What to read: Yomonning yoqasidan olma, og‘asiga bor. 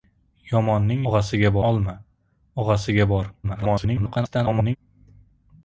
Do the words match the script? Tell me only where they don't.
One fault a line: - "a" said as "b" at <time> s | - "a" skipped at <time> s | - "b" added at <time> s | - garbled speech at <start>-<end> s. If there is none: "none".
- "yoqasidan" said as "og‘asiga" at 1.1 s
- garbled speech at 3.4-4.8 s